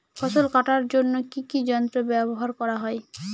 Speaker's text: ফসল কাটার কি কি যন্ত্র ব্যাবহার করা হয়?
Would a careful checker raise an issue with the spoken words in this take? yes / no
yes